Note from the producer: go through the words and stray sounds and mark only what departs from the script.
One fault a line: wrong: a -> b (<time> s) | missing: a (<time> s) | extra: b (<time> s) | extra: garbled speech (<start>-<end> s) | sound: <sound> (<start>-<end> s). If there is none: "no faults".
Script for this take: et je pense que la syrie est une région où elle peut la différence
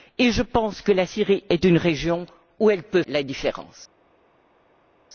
no faults